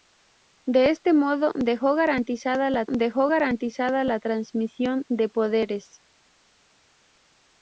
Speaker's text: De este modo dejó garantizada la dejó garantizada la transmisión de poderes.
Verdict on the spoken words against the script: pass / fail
pass